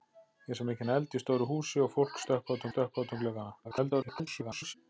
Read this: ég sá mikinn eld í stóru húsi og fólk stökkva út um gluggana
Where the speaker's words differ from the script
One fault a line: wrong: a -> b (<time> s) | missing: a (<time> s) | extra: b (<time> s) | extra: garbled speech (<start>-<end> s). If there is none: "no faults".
extra: stökkva út (2.7 s)
extra: garbled speech (3.6-4.8 s)